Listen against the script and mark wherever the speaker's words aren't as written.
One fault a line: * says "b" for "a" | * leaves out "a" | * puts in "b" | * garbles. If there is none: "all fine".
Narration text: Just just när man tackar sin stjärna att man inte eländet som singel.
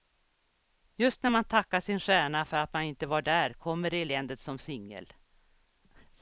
* leaves out "just"
* puts in "för"
* puts in "var där kommer"